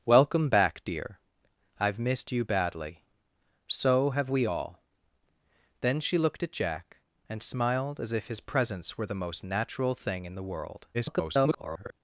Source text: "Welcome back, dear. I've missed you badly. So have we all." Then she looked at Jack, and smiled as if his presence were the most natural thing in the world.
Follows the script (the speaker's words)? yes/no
no